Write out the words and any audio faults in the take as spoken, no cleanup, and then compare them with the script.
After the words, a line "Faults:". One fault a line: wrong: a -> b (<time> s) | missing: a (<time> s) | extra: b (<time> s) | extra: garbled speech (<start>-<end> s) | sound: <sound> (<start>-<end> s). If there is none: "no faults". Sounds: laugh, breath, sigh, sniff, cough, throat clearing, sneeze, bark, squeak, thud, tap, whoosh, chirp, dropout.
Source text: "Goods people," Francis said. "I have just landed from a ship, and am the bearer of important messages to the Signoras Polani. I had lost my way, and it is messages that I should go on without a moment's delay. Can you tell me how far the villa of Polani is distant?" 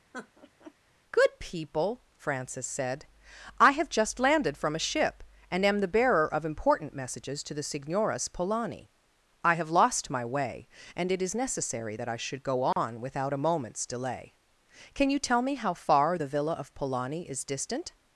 "Good people," Francis said. "I have just landed from a ship, and am the bearer of important messages to the Signoras Polani. I have lost my way, and it is necessary that I should go on without a moment's delay. Can you tell me how far the villa of Polani is distant?"
Faults:
sound: laugh (0.1-0.7 s)
wrong: Goods -> Good (1.1 s)
wrong: had -> have (9.5 s)
wrong: messages -> necessary (11.4 s)
sound: dropout (12.7-12.8 s)